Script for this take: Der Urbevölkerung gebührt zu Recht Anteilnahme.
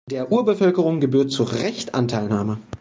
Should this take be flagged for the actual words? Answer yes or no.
no